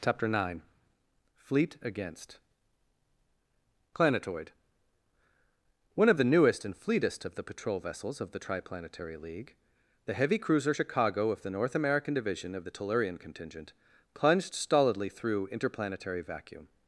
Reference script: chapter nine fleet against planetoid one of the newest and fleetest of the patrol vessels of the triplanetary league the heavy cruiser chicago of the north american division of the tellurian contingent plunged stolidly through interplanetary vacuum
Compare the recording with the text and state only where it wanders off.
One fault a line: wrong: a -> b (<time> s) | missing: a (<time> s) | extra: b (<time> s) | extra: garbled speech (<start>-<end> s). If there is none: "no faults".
no faults